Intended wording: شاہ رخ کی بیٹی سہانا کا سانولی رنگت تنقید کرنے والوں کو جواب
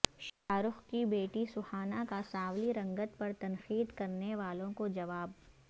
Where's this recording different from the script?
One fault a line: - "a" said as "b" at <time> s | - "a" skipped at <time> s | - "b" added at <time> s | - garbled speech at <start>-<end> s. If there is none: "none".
- "پر" added at 3.2 s